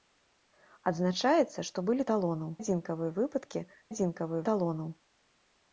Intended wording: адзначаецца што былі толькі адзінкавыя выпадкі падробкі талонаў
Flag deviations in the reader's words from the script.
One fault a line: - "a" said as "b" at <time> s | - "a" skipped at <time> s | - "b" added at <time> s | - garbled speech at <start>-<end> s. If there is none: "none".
- "толькі" said as "талонаў" at 2.1 s
- "падробкі" said as "адзінкавыя" at 3.9 s